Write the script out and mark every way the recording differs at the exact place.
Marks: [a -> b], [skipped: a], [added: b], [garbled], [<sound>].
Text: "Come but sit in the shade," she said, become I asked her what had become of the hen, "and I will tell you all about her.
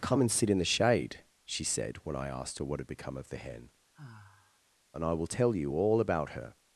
"Come [but -> and] sit in the shade," she said, [become -> when] I asked her what had become of the hen, [sigh] "and I will tell you all about her.